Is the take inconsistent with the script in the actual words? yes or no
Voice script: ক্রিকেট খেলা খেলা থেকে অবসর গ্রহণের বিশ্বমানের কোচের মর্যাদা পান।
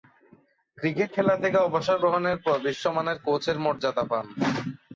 yes